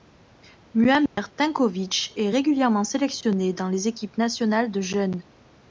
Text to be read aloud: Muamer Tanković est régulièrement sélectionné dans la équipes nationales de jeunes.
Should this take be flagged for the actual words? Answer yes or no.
yes